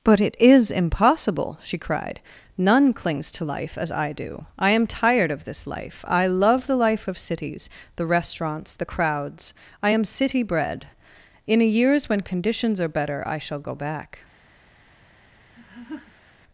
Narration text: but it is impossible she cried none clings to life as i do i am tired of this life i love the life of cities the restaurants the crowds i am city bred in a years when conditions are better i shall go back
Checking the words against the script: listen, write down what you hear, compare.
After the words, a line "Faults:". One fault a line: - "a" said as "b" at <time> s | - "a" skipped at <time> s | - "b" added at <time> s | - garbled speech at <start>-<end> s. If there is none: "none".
but it is impossible she cried none clings to life as i do i am tired of this life i love the life of cities the restaurants the crowds i am city bred in a years when conditions are better i shall go back
Faults:
none